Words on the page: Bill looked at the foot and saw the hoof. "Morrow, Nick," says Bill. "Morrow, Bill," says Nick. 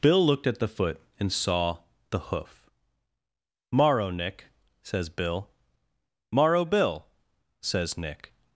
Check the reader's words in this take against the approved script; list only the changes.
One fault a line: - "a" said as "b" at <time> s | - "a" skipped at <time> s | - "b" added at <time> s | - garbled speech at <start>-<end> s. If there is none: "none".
none